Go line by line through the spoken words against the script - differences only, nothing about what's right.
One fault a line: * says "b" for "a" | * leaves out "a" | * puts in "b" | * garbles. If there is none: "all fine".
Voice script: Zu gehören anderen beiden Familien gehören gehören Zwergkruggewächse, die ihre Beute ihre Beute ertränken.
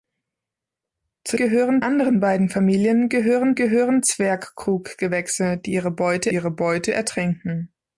all fine